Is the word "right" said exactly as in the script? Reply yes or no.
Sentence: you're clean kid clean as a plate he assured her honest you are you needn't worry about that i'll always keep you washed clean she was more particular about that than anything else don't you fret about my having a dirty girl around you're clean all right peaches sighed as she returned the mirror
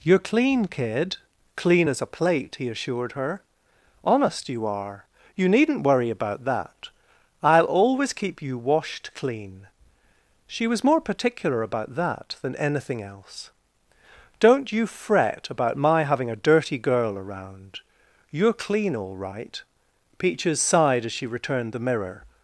yes